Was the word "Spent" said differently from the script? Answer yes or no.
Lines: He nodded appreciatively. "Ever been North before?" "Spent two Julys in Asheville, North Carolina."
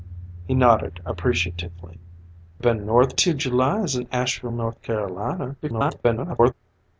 yes